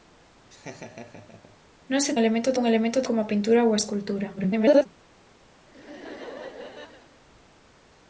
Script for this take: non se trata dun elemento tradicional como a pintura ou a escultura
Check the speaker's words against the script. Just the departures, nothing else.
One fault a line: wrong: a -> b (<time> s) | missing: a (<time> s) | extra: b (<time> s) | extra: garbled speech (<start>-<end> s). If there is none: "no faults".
wrong: trata -> elemento (2.2 s)
missing: tradicional (3.1 s)
extra: garbled speech (4.4-4.9 s)